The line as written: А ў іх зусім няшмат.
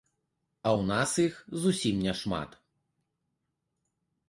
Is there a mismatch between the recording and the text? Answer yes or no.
yes